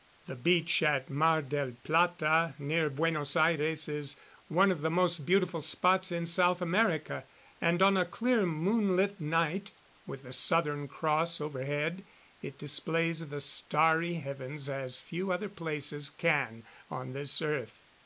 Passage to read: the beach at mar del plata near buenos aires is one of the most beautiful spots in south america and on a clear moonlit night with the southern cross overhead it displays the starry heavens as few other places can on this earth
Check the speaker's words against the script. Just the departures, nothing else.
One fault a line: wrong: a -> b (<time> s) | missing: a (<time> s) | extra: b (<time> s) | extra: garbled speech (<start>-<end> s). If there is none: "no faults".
no faults